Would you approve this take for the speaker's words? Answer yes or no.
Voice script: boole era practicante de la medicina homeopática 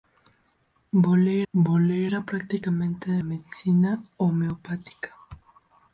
no